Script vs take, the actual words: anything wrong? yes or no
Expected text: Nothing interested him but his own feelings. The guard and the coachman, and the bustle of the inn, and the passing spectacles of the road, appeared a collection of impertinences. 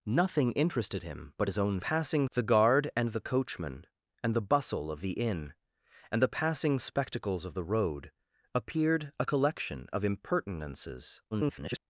yes